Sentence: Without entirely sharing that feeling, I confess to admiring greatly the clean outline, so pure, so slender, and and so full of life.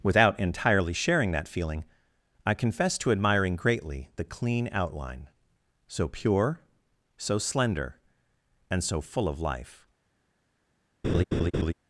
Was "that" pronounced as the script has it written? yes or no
yes